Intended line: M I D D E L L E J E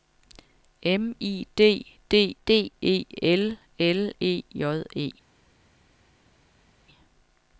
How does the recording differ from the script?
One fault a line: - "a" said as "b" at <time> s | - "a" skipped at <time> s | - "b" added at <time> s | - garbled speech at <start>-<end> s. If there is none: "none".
- "D" added at 2.5 s